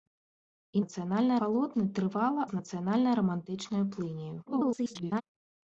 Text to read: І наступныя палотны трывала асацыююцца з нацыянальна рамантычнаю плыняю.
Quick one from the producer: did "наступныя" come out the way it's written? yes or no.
no